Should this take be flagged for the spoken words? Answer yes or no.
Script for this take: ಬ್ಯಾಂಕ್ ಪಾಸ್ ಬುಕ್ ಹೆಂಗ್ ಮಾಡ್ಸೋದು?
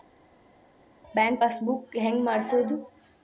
no